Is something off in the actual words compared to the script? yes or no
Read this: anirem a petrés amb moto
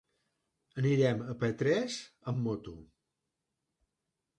no